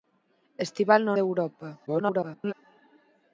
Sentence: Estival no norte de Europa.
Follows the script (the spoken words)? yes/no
no